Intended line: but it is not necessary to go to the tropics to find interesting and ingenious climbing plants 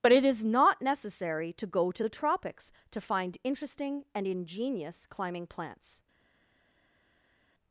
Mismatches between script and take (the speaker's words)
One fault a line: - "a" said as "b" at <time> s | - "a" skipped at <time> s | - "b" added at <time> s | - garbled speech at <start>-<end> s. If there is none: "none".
none